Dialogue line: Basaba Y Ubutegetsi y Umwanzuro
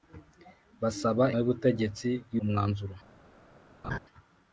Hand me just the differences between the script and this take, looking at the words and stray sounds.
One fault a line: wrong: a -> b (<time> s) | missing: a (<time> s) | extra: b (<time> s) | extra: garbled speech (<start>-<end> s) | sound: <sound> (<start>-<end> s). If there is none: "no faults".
sound: laugh (3.8-4.0 s)